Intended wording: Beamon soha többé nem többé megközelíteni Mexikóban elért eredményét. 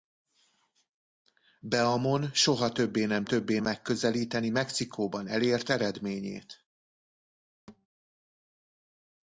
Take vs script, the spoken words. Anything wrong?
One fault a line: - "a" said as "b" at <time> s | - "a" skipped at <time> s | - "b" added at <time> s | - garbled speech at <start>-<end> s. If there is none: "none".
none